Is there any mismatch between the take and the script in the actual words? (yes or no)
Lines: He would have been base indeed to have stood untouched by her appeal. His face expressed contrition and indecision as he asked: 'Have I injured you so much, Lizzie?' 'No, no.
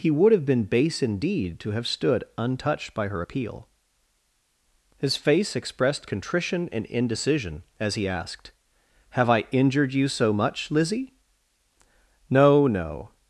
no